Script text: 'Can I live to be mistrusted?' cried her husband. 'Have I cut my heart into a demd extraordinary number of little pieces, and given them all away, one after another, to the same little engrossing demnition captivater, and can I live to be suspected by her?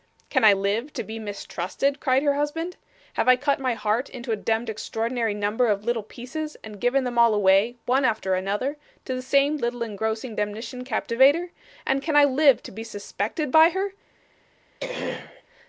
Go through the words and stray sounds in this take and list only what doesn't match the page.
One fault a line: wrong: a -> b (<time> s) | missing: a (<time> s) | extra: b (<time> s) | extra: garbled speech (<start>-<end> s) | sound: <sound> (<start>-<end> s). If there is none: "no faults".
sound: throat clearing (14.8-15.4 s)